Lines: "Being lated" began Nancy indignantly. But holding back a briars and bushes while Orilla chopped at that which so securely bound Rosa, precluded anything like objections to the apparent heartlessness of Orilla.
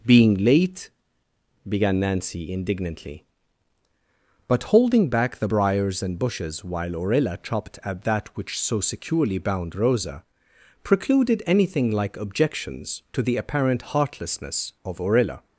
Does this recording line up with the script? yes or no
no